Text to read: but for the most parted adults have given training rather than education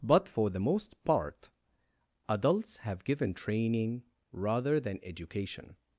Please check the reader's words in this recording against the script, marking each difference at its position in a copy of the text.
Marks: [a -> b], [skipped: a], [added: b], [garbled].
but for the most [parted -> part] adults have given training rather than education